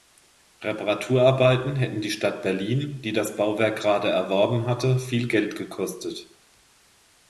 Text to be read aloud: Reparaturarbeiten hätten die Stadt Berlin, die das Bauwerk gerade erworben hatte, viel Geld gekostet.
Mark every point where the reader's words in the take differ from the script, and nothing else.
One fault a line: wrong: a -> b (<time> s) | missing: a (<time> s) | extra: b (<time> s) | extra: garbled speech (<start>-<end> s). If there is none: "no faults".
no faults